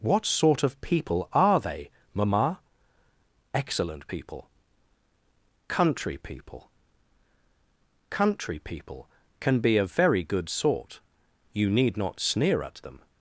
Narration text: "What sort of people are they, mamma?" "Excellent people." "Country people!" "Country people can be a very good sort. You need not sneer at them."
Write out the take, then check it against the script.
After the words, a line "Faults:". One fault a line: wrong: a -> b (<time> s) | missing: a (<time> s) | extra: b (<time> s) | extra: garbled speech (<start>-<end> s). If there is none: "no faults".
"What sort of people are they, mamma?" "Excellent people." "Country people!" "Country people can be a very good sort. You need not sneer at them."
Faults:
no faults